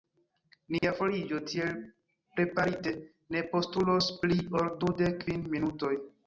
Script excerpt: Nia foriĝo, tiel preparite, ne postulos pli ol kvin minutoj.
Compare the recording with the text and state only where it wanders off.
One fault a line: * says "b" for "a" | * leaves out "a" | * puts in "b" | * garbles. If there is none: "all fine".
* puts in "dudek"